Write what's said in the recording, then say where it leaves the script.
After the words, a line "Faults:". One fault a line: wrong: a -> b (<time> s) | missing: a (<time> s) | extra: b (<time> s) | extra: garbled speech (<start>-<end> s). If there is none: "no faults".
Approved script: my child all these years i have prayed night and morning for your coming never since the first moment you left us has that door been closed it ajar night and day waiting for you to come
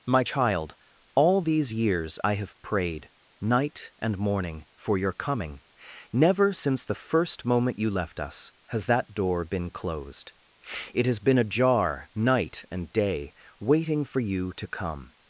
my child all these years i have prayed night and morning for your coming never since the first moment you left us has that door been closed it has been ajar night and day waiting for you to come
Faults:
extra: has been (11.1 s)